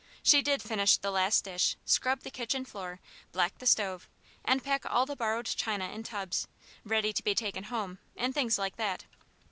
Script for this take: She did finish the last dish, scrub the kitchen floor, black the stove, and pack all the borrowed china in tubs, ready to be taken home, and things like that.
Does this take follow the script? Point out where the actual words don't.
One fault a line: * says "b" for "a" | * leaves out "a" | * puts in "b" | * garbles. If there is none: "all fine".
all fine